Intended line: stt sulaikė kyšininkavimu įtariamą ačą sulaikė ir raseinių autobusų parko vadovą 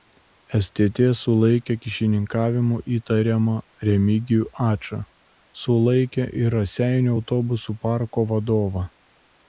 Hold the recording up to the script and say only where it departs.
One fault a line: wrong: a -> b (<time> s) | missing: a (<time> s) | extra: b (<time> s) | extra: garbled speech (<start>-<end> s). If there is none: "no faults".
extra: remigijų (3.9 s)